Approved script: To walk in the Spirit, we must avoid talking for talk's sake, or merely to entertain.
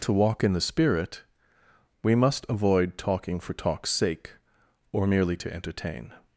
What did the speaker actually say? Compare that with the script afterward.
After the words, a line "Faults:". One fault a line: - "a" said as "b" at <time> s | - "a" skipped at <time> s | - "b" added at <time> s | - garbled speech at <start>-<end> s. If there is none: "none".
To walk in the Spirit, we must avoid talking for talk's sake, or merely to entertain.
Faults:
none